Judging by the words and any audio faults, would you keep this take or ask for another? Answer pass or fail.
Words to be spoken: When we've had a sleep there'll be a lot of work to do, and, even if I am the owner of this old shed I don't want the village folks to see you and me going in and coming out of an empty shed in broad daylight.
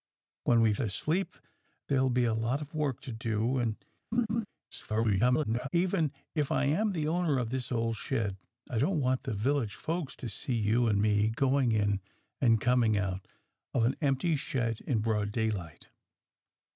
fail